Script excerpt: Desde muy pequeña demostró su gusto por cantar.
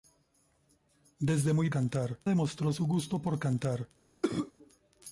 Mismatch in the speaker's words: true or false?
true